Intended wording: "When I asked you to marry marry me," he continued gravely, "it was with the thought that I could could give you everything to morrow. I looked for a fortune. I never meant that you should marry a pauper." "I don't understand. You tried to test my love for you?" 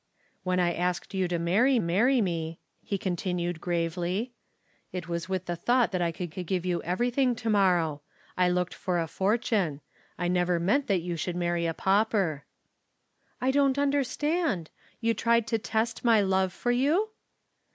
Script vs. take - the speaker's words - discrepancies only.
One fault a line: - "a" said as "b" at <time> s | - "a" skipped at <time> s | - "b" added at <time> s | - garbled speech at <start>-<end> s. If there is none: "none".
none